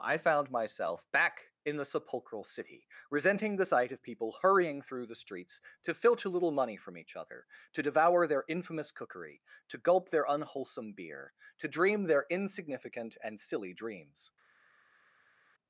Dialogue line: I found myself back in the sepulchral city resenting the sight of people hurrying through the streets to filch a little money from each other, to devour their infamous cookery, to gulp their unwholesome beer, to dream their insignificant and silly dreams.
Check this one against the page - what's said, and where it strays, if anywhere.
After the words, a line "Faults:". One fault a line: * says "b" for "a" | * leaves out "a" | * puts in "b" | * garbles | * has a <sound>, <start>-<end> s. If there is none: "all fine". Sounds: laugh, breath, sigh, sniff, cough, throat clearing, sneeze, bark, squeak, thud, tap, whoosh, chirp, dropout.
I found myself back in the sepulchral city resenting the sight of people hurrying through the streets to filch a little money from each other, to devour their infamous cookery, to gulp their unwholesome beer, to dream their insignificant and silly dreams.
Faults:
all fine